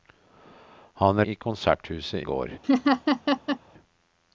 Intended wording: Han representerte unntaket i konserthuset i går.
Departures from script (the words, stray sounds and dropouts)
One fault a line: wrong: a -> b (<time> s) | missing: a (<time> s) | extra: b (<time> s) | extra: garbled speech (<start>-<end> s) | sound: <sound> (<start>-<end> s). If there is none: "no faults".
missing: representerte unntaket (1.2 s)
missing: i (2.3 s)
sound: laugh (2.6-3.6 s)